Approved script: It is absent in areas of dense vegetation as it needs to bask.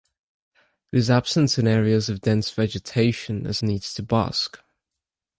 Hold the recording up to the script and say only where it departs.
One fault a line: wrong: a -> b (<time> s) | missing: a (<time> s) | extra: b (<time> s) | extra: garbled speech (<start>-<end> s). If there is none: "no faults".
missing: it (3.6 s)